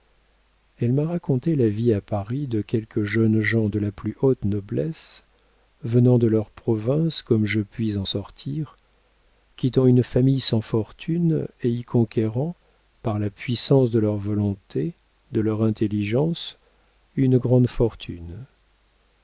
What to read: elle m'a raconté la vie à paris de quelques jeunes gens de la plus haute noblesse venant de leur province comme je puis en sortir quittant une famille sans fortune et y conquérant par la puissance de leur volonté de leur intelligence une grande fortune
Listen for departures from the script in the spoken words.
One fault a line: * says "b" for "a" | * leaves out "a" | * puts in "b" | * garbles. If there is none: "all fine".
all fine